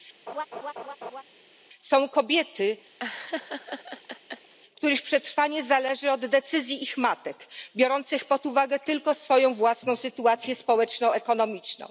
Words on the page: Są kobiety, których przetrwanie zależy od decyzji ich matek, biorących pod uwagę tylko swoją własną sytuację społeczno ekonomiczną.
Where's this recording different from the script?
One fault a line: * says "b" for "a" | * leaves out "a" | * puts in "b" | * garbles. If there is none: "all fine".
all fine